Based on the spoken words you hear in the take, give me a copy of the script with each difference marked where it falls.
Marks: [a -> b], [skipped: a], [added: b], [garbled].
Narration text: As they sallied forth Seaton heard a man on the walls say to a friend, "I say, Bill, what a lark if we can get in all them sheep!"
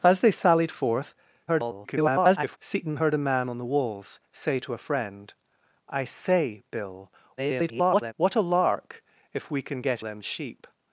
As they sallied forth [garbled] Seaton heard a man on the walls say to a friend, "I say, Bill, [garbled] what a lark if we can get [skipped: in all] them sheep!"